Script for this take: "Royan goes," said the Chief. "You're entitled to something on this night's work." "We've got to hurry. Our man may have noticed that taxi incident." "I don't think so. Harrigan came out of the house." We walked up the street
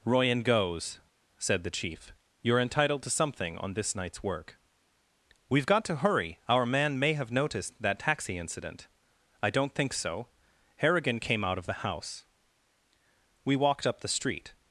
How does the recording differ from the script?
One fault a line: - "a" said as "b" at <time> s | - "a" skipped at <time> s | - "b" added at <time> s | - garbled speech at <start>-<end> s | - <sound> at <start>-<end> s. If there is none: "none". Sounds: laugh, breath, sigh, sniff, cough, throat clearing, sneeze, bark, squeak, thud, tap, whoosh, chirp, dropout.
none